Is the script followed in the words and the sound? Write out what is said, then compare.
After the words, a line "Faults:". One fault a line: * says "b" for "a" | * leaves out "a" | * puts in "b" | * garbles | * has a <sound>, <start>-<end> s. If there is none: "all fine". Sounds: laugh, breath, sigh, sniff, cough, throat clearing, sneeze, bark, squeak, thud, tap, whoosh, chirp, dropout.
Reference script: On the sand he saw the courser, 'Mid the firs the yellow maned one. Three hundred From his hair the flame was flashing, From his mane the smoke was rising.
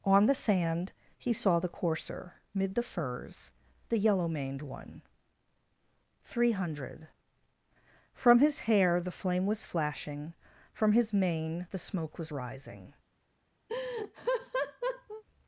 On the sand he saw the courser, 'Mid the firs the yellow maned one. Three hundred From his hair the flame was flashing, From his mane the smoke was rising.
Faults:
* has a laugh, 13.7-15.2 s